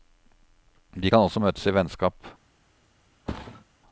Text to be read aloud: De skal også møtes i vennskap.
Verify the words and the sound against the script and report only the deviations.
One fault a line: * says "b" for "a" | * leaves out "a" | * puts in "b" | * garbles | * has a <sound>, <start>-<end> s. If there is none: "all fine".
* says "kan" for "skal"
* has a thud, 3.3-3.6 s